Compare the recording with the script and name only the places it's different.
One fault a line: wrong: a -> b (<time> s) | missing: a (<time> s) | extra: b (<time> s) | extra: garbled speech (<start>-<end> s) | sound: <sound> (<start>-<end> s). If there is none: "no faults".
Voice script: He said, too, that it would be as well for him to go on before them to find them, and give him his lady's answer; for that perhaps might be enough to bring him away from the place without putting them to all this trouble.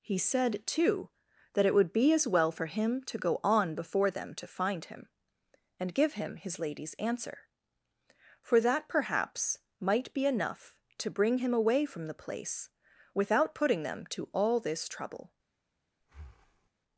wrong: them -> him (4.8 s)
sound: breath (16.0-16.7 s)